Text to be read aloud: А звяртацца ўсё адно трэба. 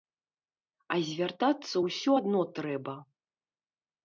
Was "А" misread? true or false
false